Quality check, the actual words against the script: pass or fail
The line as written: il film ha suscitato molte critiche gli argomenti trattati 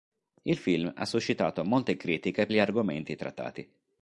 pass